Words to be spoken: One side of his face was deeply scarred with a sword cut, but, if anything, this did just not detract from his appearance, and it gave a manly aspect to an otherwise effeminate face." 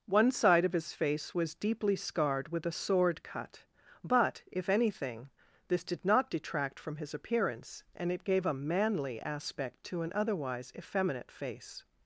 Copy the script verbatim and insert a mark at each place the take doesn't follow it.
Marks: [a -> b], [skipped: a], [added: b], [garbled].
One side of his face was deeply scarred with a sword cut, but, if anything, this did [skipped: just] not detract from his appearance, and it gave a manly aspect to an otherwise effeminate face."